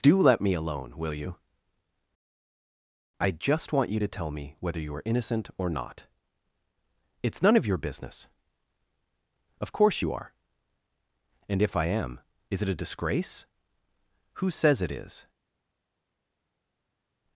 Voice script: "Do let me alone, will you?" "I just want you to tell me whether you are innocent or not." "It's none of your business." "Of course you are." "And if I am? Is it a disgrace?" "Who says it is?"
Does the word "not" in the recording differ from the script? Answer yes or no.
no